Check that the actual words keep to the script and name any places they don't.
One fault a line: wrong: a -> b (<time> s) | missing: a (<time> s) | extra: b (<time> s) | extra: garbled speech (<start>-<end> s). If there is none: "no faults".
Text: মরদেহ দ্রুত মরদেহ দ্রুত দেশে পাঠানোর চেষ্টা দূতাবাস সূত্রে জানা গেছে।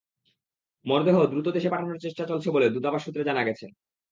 missing: মরদেহ দ্রুত (1.5 s)
extra: চলছে বলে (2.3 s)